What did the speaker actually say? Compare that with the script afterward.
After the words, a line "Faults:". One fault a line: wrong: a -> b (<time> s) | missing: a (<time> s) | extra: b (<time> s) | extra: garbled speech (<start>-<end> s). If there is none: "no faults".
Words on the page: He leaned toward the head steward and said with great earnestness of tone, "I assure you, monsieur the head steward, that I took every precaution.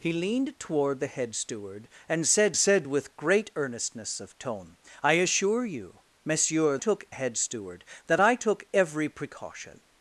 He leaned toward the head steward and said said with great earnestness of tone, "I assure you, monsieur took head steward, that I took every precaution.
Faults:
extra: said (2.6 s)
wrong: the -> took (6.8 s)